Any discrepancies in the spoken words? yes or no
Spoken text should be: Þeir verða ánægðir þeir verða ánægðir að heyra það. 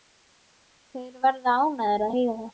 yes